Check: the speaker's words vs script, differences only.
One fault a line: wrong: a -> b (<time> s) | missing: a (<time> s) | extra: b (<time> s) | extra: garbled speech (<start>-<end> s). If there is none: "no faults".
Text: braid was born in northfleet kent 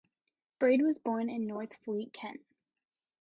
no faults